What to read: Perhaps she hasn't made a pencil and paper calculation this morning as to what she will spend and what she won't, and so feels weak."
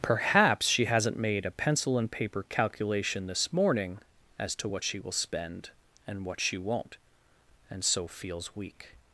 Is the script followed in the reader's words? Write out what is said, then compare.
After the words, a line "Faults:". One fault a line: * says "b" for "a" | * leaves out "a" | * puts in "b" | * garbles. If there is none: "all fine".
Perhaps she hasn't made a pencil and paper calculation this morning as to what she will spend and what she won't, and so feels weak."
Faults:
all fine